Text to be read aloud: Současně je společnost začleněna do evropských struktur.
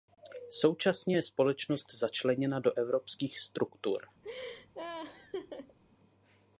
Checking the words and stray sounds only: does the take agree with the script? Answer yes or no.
no